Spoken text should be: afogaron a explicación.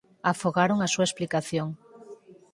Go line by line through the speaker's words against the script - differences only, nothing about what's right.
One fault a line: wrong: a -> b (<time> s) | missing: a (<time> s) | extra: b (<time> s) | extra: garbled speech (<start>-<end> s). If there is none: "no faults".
extra: súa (0.9 s)